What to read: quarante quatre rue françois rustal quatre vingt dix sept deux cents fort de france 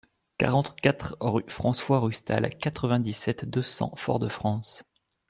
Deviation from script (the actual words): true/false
false